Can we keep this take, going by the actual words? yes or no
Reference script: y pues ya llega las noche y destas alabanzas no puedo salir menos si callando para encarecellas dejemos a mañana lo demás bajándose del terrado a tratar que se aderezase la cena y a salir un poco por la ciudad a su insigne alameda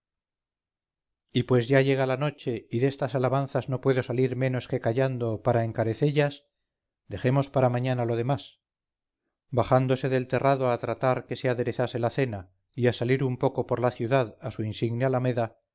no